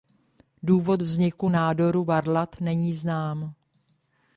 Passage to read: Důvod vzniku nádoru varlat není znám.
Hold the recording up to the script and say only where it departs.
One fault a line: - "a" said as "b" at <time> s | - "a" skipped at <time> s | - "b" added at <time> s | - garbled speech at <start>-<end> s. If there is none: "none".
none